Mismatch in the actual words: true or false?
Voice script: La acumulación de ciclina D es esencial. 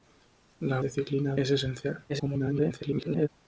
true